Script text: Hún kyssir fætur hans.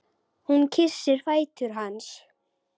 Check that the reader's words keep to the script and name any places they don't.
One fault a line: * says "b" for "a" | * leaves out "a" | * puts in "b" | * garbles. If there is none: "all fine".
all fine